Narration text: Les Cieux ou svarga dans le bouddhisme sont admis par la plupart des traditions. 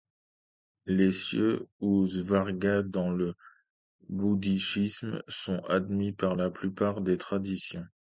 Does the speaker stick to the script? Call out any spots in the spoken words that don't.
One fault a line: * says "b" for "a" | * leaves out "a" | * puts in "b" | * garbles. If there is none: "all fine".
all fine